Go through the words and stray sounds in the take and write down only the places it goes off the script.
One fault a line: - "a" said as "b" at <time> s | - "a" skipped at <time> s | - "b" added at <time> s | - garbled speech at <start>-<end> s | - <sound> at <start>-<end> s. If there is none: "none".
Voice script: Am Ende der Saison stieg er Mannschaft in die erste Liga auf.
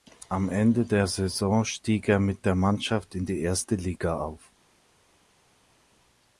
- "mit der" added at 2.2 s